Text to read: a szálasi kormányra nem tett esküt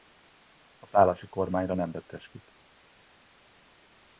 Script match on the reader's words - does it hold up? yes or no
yes